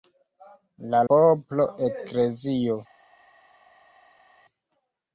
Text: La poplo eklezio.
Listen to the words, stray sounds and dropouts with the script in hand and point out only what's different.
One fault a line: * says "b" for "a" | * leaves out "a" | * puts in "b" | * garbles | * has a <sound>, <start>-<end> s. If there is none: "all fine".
all fine